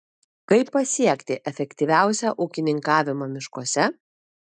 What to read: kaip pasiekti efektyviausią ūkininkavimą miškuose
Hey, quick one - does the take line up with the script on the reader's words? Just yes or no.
yes